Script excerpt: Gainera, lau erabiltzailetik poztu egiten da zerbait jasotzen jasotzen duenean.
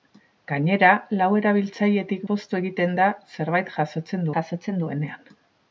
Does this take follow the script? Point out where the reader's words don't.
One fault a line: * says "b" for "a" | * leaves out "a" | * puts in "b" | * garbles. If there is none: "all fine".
all fine